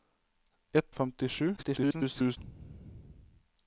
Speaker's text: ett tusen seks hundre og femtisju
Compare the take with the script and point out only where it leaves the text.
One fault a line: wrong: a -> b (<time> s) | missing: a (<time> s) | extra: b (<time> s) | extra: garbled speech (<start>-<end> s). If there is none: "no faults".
missing: tusen seks hundre (0.9 s)
extra: garbled speech (1.6-2.4 s)